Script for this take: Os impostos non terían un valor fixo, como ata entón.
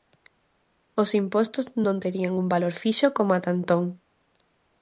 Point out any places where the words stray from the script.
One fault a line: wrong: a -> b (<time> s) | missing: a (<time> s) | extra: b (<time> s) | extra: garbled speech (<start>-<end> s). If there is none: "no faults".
no faults